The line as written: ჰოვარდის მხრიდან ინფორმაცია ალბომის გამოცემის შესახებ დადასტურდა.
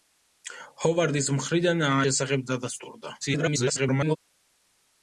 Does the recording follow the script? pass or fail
fail